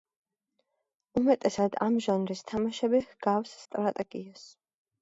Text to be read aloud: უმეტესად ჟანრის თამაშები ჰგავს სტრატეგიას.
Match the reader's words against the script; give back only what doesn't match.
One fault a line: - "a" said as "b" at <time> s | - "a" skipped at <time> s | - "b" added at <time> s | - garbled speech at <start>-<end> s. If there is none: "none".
- "ამ" added at 1.9 s